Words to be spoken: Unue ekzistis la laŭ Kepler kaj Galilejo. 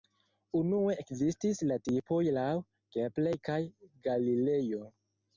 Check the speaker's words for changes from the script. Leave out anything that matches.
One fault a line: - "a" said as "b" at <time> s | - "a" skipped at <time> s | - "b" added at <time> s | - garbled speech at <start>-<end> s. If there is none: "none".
- "tipoj" added at 1.9 s